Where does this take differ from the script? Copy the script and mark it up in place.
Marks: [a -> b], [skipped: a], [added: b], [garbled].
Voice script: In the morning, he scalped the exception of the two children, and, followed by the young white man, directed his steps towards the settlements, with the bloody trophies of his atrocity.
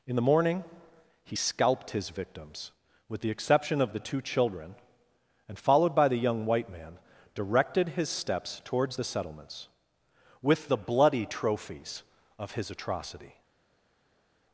In the morning, he scalped [added: his victims with] the exception of the two children, and, followed by the young white man, directed his steps towards the settlements, with the bloody trophies of his atrocity.